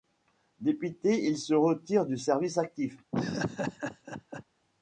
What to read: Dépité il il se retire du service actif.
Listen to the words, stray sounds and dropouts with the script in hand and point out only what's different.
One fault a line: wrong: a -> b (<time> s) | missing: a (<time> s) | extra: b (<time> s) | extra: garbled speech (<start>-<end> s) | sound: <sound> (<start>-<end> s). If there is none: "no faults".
missing: il (1.4 s)
sound: laugh (3.1-4.4 s)